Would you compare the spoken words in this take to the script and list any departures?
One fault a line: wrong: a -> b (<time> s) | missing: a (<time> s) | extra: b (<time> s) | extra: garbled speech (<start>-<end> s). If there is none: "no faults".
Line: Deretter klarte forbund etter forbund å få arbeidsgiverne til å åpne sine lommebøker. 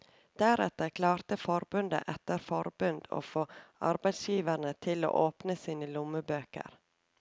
no faults